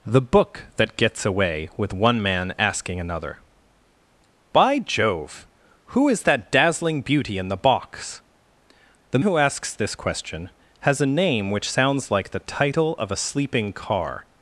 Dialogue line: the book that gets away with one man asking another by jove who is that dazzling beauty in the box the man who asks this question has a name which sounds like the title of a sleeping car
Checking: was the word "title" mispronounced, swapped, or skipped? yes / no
no